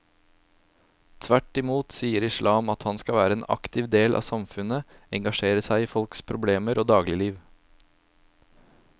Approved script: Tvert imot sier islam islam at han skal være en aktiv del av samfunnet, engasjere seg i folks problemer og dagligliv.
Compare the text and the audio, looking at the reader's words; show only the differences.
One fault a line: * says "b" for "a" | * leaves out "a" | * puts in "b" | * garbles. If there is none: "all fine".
* leaves out "islam"